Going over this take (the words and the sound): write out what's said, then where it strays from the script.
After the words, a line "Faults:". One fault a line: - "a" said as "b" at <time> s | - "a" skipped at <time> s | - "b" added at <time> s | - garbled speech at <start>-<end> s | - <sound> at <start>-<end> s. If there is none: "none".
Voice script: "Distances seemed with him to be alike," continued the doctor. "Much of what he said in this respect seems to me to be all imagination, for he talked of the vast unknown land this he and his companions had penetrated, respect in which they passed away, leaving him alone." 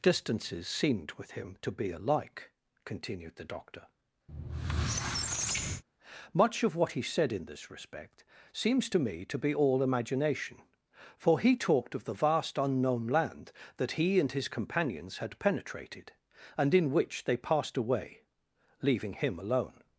"Distances seemed with him to be alike," continued the doctor. "Much of what he said in this respect seems to me to be all imagination, for he talked of the vast unknown land that he and his companions had penetrated, and in which they passed away, leaving him alone."
Faults:
- squeak at 4.3-5.8 s
- "this" said as "that" at 13.8 s
- "respect" said as "and" at 16.6 s